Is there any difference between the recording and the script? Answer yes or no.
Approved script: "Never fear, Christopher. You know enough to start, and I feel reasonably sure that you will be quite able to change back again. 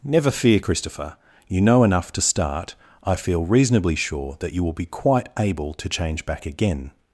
yes